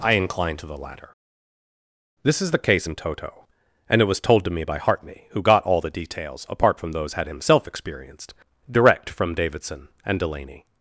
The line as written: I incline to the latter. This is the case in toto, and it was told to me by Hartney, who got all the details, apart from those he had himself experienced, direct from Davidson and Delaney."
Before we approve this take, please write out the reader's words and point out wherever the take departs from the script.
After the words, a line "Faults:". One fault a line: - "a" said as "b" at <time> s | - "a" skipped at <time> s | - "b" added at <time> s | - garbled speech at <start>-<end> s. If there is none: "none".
I incline to the latter. This is the case in toto, and it was told to me by Hartney, who got all the details, apart from those had himself experienced, direct from Davidson and Delaney."
Faults:
- "he" skipped at 7.1 s